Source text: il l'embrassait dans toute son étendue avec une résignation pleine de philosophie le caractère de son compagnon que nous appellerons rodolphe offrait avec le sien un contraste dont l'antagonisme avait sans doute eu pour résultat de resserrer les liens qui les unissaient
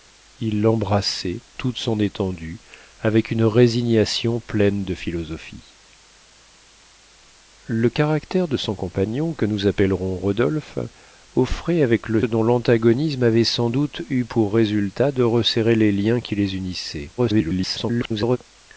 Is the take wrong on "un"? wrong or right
wrong